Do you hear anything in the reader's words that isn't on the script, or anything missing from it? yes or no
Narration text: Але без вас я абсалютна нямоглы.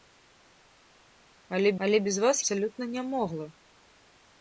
yes